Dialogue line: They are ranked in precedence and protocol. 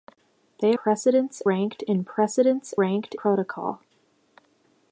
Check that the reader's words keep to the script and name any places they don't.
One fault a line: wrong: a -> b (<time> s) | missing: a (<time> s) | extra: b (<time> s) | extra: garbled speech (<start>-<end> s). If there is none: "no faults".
wrong: are -> precedence (0.7 s)
wrong: and -> ranked (2.8 s)